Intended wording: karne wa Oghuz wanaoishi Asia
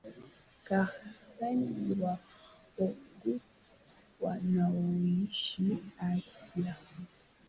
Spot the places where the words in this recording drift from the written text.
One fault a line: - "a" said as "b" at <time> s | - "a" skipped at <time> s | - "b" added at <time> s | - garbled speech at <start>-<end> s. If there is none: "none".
none